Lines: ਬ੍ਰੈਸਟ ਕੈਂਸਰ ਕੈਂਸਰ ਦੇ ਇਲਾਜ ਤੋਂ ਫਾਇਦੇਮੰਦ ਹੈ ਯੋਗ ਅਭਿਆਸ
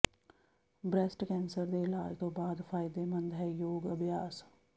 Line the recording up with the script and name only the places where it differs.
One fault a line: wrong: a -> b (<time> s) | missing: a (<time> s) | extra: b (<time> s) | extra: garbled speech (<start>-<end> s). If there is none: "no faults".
missing: ਕੈਂਸਰ (1.6 s)
extra: ਬਾਅਦ (2.3 s)